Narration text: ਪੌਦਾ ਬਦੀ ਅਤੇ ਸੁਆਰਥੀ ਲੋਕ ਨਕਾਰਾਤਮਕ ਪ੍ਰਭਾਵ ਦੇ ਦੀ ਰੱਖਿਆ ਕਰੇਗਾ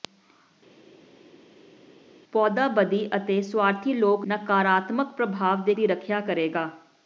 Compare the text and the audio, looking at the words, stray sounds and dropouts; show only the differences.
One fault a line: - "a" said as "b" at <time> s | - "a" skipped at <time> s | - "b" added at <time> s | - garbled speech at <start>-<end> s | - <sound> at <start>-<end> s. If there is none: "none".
none